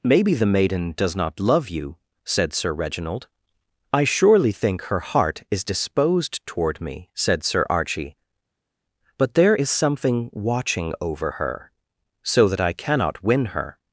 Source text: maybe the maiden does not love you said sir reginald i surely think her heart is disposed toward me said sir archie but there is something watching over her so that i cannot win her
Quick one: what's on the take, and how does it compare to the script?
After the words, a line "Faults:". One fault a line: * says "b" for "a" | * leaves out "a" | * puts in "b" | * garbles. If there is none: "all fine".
maybe the maiden does not love you said sir reginald i surely think her heart is disposed toward me said sir archie but there is something watching over her so that i cannot win her
Faults:
all fine